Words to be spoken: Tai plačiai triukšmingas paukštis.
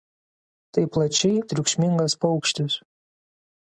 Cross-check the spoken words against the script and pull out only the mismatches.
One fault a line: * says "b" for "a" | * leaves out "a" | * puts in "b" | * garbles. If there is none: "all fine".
all fine